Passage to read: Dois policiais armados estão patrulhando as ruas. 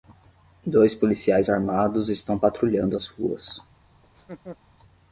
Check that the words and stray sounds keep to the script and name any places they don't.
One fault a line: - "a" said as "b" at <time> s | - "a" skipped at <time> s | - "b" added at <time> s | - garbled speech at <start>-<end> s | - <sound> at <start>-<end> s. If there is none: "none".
- laugh at 4.0-4.6 s